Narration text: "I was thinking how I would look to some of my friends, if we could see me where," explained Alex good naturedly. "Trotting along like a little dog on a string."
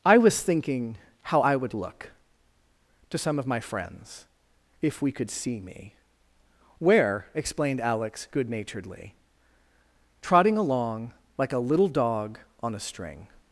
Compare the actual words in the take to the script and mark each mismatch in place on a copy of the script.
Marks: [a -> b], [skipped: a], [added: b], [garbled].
"I was thinking how I would look to some of my friends, if we could see me where," explained Alex good naturedly. "Trotting along like a little dog on a string."